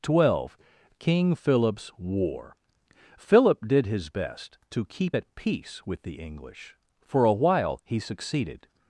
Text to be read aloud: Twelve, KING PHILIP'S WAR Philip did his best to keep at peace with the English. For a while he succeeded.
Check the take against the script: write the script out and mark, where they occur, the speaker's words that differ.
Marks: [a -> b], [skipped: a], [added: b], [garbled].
Twelve, KING PHILIP'S WAR Philip did his best to keep at peace with the English. For a while he succeeded.